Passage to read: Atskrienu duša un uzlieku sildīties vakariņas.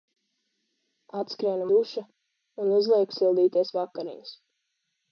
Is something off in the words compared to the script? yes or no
no